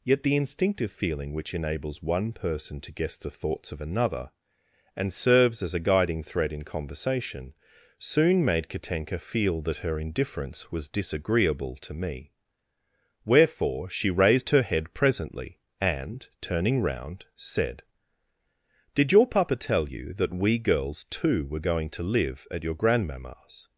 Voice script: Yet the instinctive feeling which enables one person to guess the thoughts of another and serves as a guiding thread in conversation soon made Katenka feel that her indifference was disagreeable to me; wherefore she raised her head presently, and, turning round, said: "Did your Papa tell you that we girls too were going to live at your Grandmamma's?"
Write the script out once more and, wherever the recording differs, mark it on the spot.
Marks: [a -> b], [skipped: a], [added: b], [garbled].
Yet the instinctive feeling which enables one person to guess the thoughts of another and serves as a guiding thread in conversation soon made Katenka feel that her indifference was disagreeable to me; wherefore she raised her head presently, and, turning round, said: "Did your Papa tell you that we girls too were going to live at your Grandmamma's?"